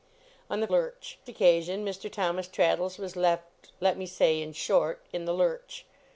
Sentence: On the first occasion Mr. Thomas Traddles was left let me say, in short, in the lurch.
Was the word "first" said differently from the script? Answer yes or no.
yes